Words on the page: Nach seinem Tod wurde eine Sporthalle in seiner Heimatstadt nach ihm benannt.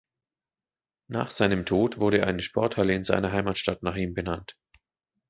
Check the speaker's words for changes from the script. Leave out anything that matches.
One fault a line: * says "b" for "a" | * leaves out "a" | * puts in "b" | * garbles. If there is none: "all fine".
all fine